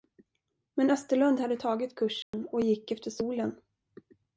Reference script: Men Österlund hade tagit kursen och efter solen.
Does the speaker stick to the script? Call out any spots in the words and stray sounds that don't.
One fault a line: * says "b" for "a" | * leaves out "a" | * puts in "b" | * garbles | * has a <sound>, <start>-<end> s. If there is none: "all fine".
* has a dropout, 2.2-2.3 s
* puts in "gick"